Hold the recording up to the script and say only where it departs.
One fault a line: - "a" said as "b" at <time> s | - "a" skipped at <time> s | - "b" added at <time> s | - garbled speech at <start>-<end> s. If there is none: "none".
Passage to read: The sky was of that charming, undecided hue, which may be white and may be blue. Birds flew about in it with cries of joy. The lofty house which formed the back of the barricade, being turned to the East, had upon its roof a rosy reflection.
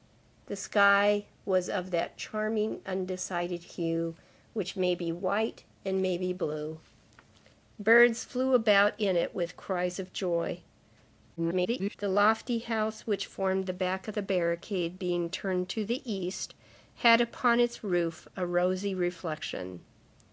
- garbled speech at 11.4-12.0 s